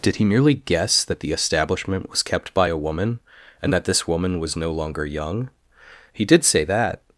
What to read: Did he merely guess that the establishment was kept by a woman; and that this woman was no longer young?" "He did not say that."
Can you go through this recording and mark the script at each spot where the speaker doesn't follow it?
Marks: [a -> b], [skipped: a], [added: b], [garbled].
Did he merely guess that the establishment was kept by a woman; and that this woman was no longer young?" "He did [skipped: not] say that."